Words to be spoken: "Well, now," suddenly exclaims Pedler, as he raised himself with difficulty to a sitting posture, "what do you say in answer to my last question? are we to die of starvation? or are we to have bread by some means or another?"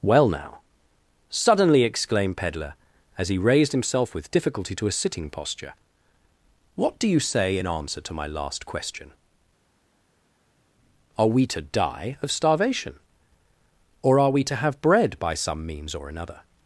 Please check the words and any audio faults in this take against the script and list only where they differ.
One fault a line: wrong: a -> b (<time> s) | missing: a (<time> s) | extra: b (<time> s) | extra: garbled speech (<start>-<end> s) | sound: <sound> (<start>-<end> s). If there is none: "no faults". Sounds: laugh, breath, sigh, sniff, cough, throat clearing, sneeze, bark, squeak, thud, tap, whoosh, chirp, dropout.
wrong: exclaims -> exclaimed (1.8 s)